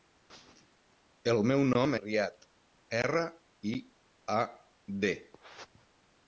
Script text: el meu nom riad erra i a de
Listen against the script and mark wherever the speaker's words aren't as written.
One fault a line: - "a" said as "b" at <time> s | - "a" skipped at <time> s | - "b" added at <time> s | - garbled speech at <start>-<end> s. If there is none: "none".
none